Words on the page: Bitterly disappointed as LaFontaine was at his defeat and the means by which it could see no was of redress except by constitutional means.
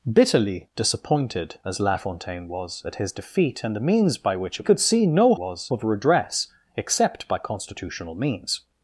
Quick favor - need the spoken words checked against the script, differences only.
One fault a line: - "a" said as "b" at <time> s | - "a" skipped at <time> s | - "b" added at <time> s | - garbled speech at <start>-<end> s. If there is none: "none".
none